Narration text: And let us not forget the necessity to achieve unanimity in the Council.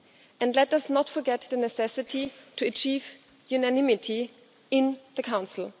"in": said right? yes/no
yes